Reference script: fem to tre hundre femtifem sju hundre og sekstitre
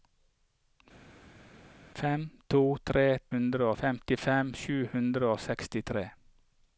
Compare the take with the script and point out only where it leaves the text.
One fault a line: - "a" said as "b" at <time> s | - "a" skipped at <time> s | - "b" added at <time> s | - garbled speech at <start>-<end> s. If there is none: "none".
none